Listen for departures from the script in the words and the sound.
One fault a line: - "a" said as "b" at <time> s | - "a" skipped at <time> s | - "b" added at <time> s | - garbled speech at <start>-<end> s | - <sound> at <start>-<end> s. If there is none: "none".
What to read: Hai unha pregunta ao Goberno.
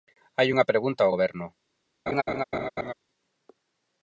- laugh at 2.1-2.9 s